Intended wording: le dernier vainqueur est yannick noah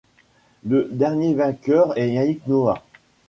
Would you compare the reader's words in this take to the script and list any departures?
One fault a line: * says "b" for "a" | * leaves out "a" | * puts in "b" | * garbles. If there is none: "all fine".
all fine